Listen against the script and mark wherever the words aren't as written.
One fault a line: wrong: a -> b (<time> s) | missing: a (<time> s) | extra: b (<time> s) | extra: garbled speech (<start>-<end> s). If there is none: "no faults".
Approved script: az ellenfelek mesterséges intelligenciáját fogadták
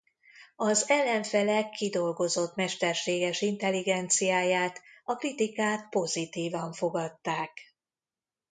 extra: kidolgozott (1.7 s)
extra: a kritikák pozitívan (5.0 s)